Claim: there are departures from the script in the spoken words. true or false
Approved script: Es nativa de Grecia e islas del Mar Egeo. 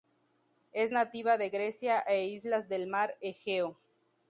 false